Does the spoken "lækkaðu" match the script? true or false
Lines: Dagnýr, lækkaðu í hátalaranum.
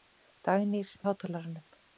false